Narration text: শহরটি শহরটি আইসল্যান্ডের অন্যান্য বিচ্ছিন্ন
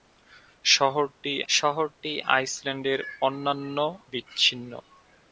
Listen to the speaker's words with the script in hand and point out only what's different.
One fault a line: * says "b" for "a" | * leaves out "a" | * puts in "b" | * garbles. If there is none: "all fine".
all fine